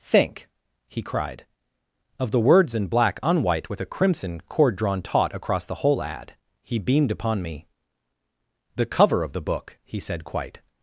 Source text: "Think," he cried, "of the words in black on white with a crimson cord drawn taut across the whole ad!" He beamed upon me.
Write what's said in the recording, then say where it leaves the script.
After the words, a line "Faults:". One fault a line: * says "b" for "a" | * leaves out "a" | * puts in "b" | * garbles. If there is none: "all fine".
"Think," he cried, "of the words in black on white with a crimson cord drawn taut across the whole ad!" He beamed upon me. "The cover of the book," he said quite
Faults:
* puts in "The cover of the book he said quite"